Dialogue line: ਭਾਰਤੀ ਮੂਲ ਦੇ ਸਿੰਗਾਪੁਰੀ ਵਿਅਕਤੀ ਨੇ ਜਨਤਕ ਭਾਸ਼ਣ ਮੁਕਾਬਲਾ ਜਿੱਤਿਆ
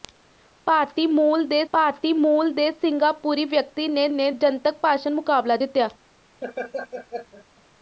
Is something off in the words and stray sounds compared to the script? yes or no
yes